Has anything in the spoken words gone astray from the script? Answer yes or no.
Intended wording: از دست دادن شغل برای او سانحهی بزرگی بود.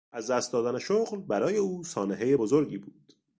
no